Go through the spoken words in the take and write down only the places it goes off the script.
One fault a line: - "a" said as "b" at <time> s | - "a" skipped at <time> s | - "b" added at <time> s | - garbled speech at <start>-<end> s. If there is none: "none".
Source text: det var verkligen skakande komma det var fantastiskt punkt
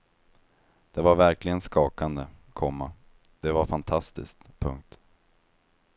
none